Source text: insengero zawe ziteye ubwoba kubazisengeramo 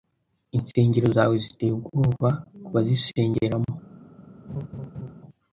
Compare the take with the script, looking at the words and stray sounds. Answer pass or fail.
fail